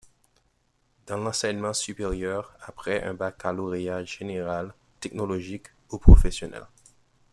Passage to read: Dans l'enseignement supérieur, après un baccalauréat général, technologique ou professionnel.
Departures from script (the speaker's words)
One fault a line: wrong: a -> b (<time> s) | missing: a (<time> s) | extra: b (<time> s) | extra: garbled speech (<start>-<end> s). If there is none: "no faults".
no faults